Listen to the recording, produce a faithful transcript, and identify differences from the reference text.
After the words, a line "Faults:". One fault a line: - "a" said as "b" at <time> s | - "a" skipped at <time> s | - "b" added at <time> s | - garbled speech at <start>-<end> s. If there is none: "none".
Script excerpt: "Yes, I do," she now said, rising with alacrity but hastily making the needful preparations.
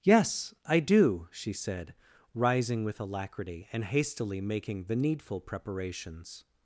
"Yes, I do," she said, rising with alacrity and hastily making the needful preparations.
Faults:
- "now" skipped at 1.5 s
- "but" said as "and" at 3.7 s